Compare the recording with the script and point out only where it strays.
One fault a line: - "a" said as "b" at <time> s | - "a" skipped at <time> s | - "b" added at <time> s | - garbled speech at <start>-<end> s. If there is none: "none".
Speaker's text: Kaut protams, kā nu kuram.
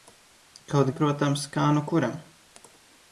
none